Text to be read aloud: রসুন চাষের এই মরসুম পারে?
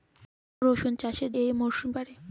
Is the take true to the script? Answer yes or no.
yes